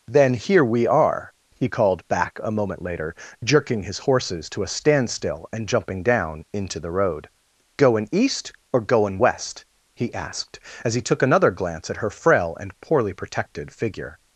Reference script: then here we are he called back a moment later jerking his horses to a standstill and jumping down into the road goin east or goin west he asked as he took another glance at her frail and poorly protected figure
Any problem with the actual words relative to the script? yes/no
no